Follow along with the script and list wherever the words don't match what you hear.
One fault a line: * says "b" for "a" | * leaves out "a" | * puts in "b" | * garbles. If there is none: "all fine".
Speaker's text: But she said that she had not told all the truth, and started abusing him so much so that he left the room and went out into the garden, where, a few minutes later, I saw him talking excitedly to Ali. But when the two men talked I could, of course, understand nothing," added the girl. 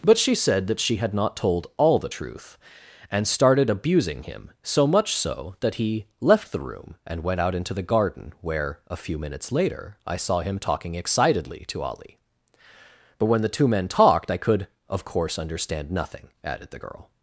all fine